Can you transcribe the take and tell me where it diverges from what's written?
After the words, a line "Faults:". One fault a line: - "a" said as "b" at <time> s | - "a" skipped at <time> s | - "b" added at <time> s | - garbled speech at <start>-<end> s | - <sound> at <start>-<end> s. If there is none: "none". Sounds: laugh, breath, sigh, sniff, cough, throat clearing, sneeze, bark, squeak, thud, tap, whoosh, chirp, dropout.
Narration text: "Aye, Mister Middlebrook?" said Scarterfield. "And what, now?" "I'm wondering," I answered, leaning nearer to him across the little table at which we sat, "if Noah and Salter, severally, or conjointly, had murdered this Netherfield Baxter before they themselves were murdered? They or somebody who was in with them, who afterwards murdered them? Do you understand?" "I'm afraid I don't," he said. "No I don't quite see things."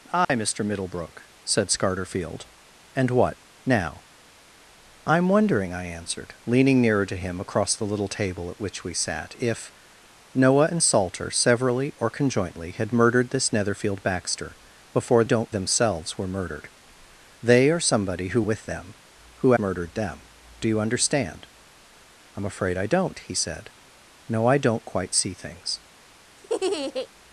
"Aye, Mister Middlebrook?" said Scarterfield. "And what, now?" "I'm wondering," I answered, leaning nearer to him across the little table at which we sat, "if Noah and Salter, severally, or conjointly, had murdered this Netherfield Baxter before don't themselves were murdered? They or somebody who with them, who murdered them? Do you understand?" "I'm afraid I don't," he said. "No I don't quite see things."
Faults:
- dropout at 0.2-0.3 s
- "they" said as "don't" at 15.2 s
- "was in" skipped at 18.4 s
- "afterwards" skipped at 19.5 s
- laugh at 26.4-27.1 s